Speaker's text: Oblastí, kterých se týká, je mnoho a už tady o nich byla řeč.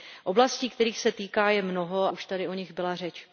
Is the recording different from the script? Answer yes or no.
yes